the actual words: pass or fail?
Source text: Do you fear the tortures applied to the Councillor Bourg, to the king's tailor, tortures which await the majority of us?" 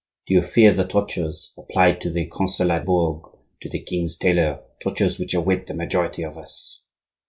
pass